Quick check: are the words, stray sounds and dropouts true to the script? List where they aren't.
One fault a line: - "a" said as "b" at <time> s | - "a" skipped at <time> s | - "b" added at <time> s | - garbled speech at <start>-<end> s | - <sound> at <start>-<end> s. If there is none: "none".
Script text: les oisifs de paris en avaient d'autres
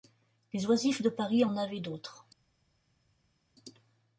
none